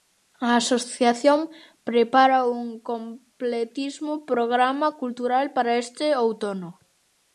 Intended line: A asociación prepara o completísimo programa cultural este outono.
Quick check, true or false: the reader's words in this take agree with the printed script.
false